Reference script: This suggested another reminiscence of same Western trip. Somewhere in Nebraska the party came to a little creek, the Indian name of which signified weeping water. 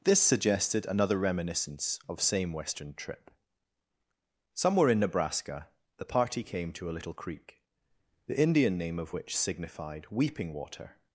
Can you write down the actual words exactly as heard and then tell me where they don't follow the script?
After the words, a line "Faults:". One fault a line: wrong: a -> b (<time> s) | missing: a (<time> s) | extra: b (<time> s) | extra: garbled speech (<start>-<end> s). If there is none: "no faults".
This suggested another reminiscence of same Western trip. Somewhere in Nebraska the party came to a little creek, the Indian name of which signified weeping water.
Faults:
no faults